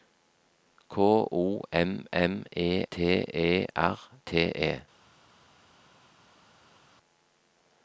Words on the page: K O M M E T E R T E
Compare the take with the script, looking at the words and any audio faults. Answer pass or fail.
pass